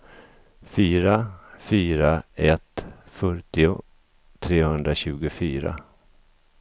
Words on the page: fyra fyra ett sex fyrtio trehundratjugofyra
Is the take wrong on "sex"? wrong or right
wrong